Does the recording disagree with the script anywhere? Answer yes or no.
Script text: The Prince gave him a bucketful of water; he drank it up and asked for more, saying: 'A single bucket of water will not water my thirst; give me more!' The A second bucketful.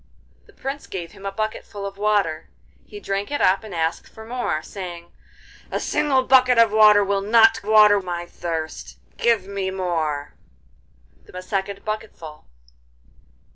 no